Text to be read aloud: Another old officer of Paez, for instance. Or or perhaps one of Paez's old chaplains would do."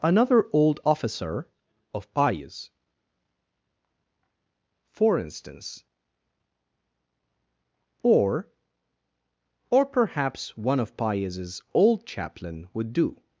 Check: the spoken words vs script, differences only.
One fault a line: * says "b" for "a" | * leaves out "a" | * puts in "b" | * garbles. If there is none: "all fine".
* says "chaplain" for "chaplains"